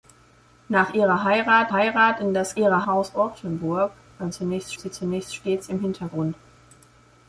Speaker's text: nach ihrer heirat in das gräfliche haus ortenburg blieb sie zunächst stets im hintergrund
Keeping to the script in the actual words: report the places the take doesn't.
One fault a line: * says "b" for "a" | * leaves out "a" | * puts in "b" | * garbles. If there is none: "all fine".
* puts in "heirat"
* says "ihrer" for "gräfliche"
* says "zunächst" for "blieb"